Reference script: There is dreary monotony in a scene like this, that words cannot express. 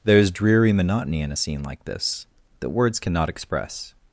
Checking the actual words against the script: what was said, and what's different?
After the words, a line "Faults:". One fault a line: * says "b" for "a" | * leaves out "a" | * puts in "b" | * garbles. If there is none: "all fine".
There is dreary monotony in a scene like this, that words cannot express.
Faults:
all fine